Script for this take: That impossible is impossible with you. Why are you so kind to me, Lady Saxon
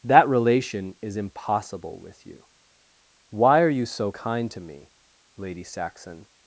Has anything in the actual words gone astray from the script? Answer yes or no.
yes